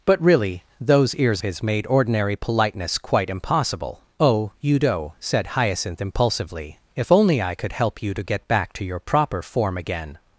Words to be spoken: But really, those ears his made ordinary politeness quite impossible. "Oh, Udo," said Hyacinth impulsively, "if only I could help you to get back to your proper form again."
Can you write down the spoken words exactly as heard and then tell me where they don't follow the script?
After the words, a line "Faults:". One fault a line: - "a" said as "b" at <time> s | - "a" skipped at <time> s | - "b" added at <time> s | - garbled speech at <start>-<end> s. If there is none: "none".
But really, those ears his made ordinary politeness quite impossible. "Oh, Udo," said Hyacinth impulsively, "if only I could help you to get back to your proper form again."
Faults:
none